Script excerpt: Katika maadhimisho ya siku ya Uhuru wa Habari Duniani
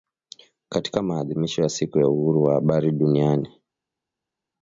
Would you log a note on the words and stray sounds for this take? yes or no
no